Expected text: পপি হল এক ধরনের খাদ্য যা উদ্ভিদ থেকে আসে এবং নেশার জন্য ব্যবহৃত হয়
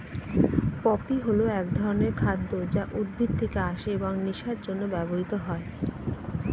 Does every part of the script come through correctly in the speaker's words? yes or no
yes